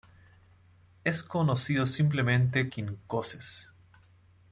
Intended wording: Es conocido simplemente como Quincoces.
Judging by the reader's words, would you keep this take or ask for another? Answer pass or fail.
fail